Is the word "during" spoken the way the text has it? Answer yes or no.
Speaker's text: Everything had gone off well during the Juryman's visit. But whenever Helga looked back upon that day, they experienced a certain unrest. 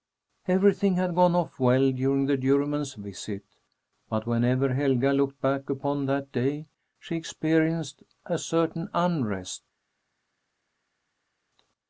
yes